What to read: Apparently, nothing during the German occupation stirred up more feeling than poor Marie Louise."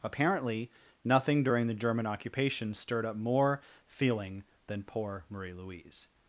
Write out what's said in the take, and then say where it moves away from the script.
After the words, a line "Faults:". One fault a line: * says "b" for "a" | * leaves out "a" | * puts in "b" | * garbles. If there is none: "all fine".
Apparently, nothing during the German occupation stirred up more feeling than poor Marie Louise."
Faults:
all fine